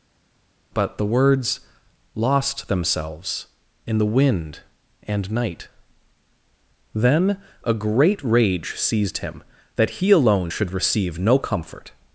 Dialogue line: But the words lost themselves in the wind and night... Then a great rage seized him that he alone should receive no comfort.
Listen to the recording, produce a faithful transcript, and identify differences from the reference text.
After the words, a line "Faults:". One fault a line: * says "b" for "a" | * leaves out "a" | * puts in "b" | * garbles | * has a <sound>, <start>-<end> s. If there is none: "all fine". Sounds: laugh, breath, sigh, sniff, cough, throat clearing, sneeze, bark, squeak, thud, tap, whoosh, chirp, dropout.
But the words lost themselves in the wind and night... Then a great rage seized him that he alone should receive no comfort.
Faults:
all fine